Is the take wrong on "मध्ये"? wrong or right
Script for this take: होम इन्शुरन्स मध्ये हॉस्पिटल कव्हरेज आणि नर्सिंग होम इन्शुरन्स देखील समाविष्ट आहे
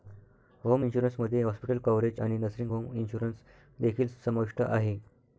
right